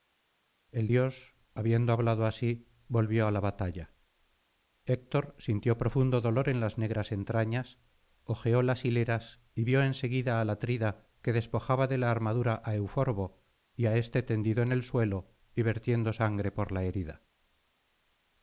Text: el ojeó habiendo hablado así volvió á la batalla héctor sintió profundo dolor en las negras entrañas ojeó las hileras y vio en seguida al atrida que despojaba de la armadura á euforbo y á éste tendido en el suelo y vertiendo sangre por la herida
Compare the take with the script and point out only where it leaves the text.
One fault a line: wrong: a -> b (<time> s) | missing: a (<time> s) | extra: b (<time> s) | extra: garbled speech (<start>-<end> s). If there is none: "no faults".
wrong: ojeó -> dios (0.8 s)